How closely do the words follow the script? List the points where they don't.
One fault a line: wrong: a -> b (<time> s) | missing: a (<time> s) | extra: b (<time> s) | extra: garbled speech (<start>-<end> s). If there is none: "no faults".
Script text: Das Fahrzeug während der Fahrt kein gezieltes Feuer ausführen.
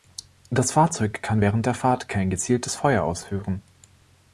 extra: kann (1.2 s)